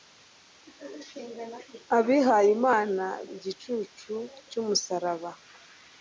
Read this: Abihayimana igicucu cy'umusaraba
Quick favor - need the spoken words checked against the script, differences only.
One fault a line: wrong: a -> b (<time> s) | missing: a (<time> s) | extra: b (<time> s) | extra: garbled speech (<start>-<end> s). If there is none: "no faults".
no faults